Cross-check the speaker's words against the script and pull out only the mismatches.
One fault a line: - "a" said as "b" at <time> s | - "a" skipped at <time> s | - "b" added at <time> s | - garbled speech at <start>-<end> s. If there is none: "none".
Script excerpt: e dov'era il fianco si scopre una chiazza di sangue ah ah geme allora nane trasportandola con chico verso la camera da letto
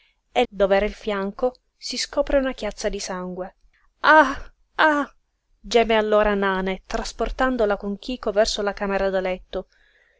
none